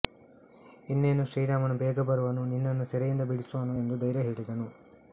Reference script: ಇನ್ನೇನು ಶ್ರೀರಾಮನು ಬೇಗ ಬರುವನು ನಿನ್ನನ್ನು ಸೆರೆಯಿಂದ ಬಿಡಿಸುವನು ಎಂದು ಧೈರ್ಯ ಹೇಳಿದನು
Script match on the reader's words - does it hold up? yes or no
yes